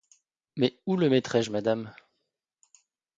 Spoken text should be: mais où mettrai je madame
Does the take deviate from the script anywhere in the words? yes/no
yes